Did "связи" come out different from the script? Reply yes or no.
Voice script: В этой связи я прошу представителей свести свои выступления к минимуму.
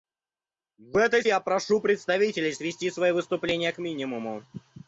yes